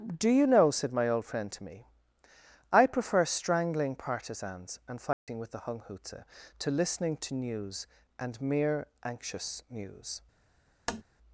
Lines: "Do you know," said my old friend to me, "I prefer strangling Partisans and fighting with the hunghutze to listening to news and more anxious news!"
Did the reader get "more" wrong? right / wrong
wrong